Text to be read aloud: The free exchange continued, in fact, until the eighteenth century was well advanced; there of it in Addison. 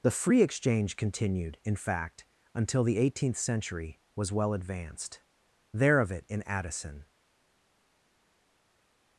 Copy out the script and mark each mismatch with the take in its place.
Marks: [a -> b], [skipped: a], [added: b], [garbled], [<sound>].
The free exchange continued, in fact, until the eighteenth century was well advanced; there of it in Addison.